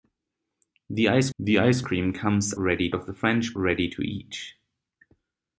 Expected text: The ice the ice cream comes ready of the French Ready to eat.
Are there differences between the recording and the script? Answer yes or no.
no